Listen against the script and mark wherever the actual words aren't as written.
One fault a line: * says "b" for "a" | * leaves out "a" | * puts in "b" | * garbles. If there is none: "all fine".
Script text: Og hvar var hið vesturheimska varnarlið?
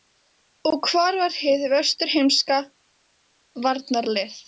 all fine